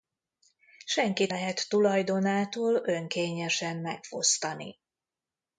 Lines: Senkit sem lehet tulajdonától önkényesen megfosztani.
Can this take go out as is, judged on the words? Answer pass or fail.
fail